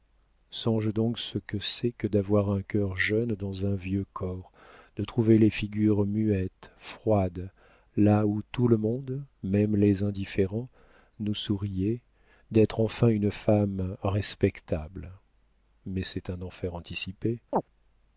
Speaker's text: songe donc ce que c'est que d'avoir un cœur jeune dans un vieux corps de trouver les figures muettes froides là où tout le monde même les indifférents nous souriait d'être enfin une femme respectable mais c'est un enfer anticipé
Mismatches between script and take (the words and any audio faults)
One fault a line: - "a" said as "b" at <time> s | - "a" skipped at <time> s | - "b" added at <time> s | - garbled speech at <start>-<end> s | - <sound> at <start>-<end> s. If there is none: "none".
- chirp at 17.5-17.6 s